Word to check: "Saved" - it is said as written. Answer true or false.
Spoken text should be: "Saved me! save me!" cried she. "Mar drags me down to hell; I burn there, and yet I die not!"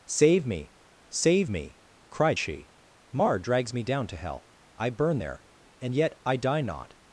false